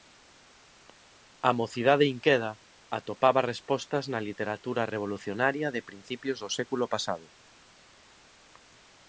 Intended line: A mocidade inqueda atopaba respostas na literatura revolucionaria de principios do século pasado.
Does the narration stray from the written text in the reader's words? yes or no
no